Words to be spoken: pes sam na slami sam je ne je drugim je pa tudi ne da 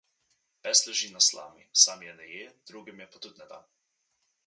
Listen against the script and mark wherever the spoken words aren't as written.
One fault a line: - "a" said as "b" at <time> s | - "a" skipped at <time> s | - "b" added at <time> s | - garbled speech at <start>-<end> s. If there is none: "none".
- "sam" said as "leži" at 0.9 s